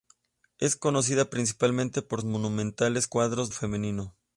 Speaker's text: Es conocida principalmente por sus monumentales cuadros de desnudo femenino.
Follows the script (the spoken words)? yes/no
no